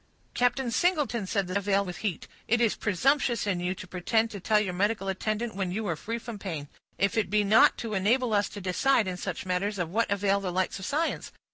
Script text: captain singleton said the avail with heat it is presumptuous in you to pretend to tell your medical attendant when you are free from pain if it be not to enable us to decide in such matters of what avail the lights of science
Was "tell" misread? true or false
false